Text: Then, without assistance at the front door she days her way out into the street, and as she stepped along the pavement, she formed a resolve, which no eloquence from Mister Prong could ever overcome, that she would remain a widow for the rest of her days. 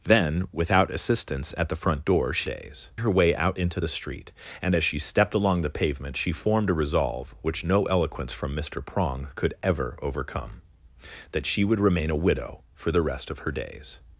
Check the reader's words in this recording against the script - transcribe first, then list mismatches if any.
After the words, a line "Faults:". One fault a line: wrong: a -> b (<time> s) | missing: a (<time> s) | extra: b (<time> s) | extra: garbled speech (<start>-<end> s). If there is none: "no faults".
Then, without assistance at the front door she days her way out into the street, and as she stepped along the pavement, she formed a resolve, which no eloquence from Mister Prong could ever overcome, that she would remain a widow for the rest of her days.
Faults:
no faults